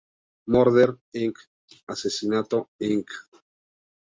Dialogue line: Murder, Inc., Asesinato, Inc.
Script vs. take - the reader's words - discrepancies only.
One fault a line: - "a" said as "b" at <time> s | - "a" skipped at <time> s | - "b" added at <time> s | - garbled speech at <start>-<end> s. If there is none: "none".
none